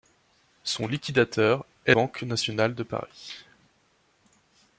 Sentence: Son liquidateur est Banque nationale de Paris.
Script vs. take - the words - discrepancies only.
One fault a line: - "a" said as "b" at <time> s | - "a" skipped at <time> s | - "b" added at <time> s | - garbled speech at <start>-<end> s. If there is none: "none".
none